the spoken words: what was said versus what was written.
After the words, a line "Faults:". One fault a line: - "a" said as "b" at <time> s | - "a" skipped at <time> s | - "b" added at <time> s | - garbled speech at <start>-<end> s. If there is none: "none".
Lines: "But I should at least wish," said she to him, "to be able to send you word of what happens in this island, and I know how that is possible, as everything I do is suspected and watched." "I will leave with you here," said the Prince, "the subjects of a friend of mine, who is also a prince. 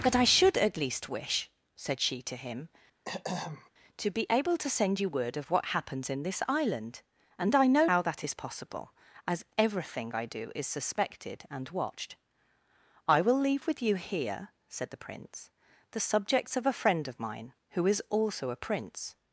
"But I should at least wish," said she to him, "to be able to send you word of what happens in this island, and I know how that is possible, as everything I do is suspected and watched." "I will leave with you here," said the Prince, "the subjects of a friend of mine, who is also a prince.
Faults:
none